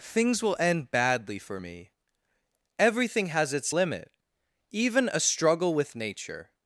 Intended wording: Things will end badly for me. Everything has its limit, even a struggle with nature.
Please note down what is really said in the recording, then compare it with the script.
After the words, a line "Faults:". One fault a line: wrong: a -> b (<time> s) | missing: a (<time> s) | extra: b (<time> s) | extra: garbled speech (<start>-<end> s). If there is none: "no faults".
Things will end badly for me. Everything has its limit, even a struggle with nature.
Faults:
no faults